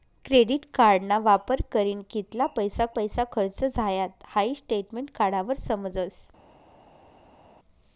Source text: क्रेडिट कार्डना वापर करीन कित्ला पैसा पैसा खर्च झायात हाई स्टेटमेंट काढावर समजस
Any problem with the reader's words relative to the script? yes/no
no